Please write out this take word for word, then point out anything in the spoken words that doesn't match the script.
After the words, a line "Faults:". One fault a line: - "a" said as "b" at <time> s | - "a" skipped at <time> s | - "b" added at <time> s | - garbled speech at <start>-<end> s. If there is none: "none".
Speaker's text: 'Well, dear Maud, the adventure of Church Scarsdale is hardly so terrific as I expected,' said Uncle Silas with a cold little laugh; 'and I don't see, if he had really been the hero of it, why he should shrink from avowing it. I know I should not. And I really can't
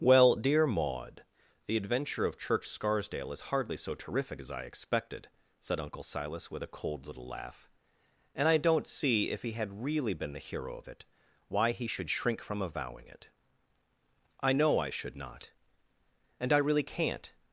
'Well, dear Maud, the adventure of Church Scarsdale is hardly so terrific as I expected,' said Uncle Silas with a cold little laugh; 'and I don't see, if he had really been the hero of it, why he should shrink from avowing it. I know I should not. And I really can't
Faults:
none